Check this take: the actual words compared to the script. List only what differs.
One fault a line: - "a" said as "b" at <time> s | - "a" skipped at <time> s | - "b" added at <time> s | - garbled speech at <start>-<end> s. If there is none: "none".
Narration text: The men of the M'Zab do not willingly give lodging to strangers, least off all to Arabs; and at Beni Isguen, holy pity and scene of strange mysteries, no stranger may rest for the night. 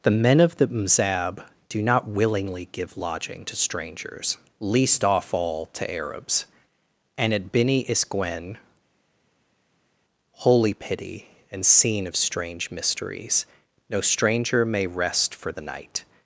none